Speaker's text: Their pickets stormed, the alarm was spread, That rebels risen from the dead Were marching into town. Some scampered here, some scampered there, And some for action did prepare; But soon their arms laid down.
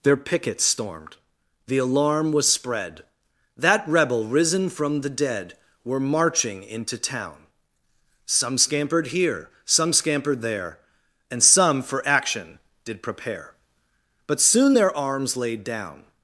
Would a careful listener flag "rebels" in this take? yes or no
yes